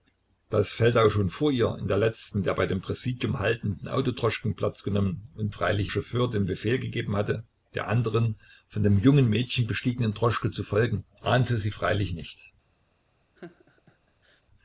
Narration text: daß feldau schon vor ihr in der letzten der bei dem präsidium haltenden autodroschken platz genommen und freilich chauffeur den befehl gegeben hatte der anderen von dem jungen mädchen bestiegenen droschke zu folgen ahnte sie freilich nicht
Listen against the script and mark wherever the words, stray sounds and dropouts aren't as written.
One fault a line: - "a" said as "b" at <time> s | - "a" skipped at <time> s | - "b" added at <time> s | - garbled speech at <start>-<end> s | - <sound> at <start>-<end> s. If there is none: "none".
- laugh at 13.4-14.4 s